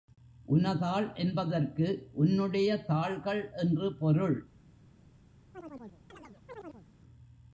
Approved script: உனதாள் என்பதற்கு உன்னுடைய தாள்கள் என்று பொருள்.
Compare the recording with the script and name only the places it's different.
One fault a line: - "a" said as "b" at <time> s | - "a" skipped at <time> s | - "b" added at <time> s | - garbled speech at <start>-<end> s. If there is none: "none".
none